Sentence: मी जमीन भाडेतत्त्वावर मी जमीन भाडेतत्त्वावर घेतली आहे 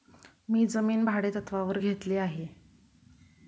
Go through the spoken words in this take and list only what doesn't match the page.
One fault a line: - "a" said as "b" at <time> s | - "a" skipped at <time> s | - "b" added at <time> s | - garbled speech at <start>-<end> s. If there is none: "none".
- "मी जमीन भाडेतत्त्वावर" skipped at 1.8 s